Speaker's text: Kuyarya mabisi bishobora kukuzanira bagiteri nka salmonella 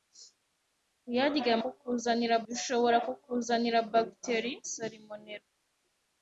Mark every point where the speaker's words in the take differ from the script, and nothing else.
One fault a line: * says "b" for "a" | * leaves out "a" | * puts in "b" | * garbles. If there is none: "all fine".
* says "kukuzanira" for "mabisi"
* leaves out "nka"